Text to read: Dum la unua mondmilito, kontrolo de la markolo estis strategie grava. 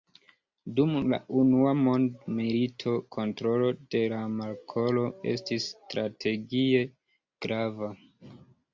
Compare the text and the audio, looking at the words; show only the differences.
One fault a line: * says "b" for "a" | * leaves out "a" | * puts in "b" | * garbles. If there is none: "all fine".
all fine